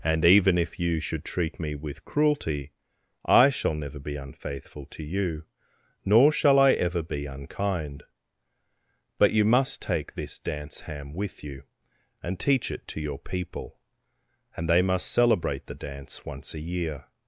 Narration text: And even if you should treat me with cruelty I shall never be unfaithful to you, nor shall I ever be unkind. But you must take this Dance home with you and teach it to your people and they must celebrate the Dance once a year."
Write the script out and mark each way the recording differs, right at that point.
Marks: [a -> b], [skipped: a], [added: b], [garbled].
And even if you should treat me with cruelty I shall never be unfaithful to you, nor shall I ever be unkind. But you must take this Dance [home -> ham] with you and teach it to your people and they must celebrate the Dance once a year."